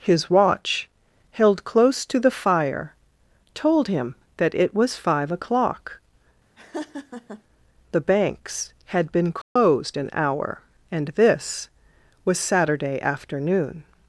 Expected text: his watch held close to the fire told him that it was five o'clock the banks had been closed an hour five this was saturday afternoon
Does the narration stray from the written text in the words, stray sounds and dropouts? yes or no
yes